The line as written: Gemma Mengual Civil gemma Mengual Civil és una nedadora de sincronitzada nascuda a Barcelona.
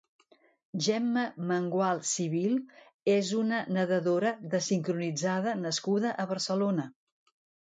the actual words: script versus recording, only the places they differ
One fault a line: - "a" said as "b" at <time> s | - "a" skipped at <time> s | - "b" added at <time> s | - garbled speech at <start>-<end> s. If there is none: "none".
- "gemma Mengual Civil" skipped at 2.6 s